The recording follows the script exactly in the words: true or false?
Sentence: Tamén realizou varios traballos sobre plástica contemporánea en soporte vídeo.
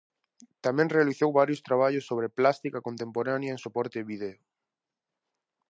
true